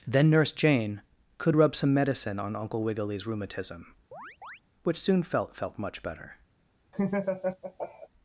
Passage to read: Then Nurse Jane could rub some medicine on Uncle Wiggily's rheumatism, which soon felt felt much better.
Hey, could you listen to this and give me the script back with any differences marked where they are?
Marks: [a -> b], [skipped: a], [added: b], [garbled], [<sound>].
Then Nurse Jane could rub some medicine on Uncle Wiggily's rheumatism, [chirp] which soon felt felt much better. [laugh]